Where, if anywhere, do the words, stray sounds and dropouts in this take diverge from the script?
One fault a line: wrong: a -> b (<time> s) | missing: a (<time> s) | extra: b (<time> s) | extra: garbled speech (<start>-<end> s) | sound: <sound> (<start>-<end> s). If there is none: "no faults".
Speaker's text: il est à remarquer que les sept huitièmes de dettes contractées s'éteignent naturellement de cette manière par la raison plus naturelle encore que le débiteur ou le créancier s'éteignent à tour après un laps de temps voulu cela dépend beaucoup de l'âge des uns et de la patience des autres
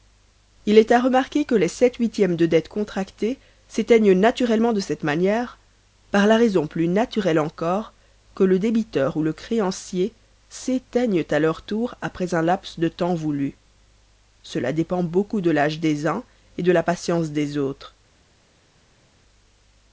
extra: leur (11.4 s)